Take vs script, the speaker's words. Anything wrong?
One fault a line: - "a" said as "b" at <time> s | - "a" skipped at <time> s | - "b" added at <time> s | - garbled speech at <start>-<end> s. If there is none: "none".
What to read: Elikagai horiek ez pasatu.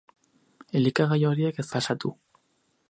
none